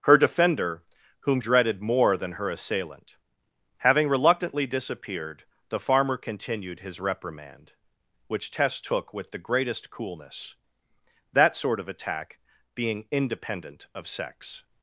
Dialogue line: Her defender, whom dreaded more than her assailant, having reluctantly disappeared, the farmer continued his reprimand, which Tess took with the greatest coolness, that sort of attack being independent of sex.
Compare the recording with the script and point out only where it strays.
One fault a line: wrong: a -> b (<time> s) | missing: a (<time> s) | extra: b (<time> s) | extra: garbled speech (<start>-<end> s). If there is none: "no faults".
no faults